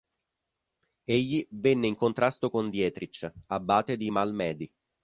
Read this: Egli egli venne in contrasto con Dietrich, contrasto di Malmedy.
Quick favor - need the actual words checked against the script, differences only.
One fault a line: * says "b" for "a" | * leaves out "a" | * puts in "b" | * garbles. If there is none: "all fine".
* leaves out "egli"
* says "abate" for "contrasto"